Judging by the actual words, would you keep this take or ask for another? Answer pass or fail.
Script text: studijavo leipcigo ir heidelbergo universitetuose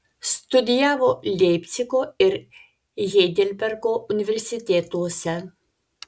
pass